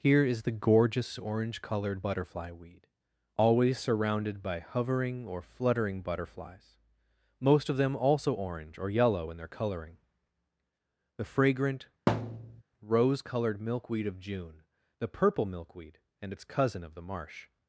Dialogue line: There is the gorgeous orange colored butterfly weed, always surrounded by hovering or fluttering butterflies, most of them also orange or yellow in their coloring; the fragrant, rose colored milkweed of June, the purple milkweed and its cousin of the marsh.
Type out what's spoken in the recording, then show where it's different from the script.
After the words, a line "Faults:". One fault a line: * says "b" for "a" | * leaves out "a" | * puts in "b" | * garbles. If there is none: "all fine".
Here is the gorgeous orange colored butterfly weed, always surrounded by hovering or fluttering butterflies, most of them also orange or yellow in their coloring; the fragrant, rose colored milkweed of June, the purple milkweed and its cousin of the marsh.
Faults:
* says "Here" for "There"